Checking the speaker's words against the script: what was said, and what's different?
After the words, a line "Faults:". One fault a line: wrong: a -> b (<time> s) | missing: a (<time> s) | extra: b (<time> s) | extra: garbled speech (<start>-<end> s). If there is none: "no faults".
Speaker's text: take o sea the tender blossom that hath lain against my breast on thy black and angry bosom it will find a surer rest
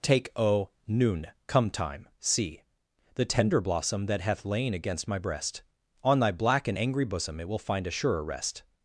take o noon come time see the tender blossom that hath lain against my breast on thy black and angry bosom it will find a surer rest
Faults:
wrong: sea -> noon come time see (0.9 s)